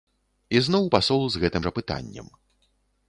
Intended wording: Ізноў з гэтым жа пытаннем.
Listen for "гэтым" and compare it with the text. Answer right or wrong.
right